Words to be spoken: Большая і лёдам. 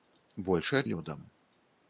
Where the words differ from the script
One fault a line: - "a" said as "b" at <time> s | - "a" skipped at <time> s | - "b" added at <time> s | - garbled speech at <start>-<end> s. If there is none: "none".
none